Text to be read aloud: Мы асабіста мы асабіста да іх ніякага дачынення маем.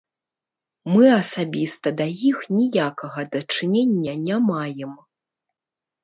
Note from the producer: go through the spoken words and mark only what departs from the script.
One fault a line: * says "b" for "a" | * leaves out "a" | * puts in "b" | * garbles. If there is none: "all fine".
* leaves out "мы асабіста"
* puts in "не"